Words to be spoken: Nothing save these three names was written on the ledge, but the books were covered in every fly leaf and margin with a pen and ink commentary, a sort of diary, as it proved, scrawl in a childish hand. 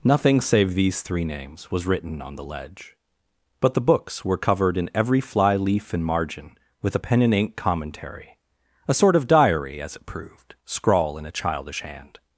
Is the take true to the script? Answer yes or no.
yes